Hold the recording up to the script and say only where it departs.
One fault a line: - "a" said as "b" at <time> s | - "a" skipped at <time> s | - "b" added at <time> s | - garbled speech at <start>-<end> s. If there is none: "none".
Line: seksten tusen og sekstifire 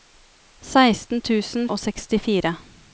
none